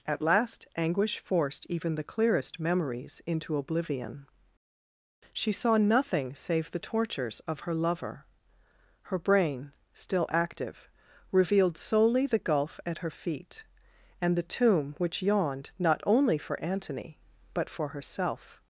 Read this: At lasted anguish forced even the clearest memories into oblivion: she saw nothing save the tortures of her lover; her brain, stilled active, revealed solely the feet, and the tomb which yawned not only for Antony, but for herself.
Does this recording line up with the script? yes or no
no